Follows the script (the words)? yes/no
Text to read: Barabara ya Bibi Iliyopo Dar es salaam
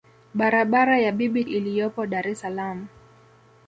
yes